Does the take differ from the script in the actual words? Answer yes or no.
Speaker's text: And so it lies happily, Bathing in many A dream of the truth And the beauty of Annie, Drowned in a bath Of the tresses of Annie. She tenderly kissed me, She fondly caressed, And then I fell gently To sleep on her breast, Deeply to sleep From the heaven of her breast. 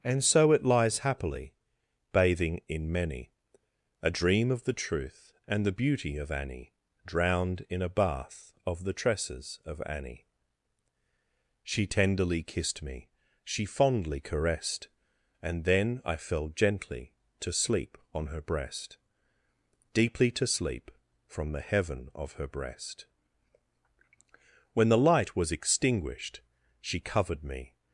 yes